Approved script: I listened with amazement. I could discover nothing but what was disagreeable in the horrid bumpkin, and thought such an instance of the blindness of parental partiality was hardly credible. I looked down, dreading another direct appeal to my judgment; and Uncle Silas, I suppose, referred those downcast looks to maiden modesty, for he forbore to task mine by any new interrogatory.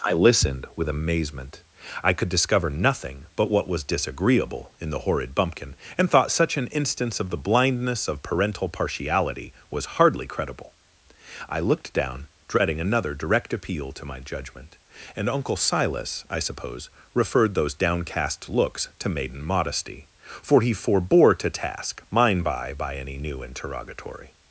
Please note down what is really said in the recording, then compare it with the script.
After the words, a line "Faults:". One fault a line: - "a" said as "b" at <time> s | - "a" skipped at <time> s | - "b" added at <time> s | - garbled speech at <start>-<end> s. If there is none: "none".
I listened with amazement. I could discover nothing but what was disagreeable in the horrid bumpkin, and thought such an instance of the blindness of parental partiality was hardly credible. I looked down, dreading another direct appeal to my judgment; and Uncle Silas, I suppose, referred those downcast looks to maiden modesty, for he forbore to task mine by by any new interrogatory.
Faults:
- "by" added at 22.7 s